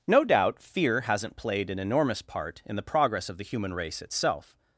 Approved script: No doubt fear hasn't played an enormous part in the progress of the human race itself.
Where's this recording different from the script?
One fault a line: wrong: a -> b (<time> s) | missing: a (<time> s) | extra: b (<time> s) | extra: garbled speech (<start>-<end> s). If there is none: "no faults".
no faults